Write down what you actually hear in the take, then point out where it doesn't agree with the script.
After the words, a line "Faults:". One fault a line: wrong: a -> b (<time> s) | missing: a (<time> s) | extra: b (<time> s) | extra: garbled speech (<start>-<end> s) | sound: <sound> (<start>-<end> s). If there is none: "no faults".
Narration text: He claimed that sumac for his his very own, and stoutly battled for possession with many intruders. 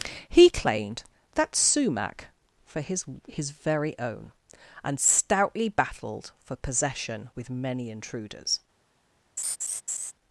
He claimed that sumac for his his very own, and stoutly battled for possession with many intruders.
Faults:
sound: laugh (9.4-10.1 s)